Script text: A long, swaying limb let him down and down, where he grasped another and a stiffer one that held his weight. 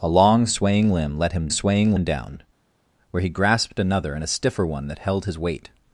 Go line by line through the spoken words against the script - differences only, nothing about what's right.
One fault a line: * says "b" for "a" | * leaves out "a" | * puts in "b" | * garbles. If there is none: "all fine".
* says "swaying" for "down"